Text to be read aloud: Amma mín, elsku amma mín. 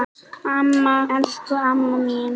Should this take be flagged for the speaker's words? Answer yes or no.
yes